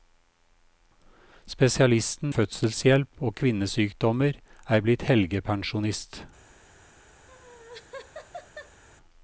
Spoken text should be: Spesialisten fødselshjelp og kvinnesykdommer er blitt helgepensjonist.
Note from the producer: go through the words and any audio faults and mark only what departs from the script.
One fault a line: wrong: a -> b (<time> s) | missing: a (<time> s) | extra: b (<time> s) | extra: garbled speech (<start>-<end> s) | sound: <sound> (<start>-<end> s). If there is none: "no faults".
sound: laugh (7.3-8.8 s)